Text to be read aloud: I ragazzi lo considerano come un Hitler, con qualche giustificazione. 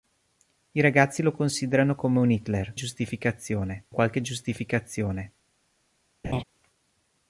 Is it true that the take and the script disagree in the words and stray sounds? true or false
true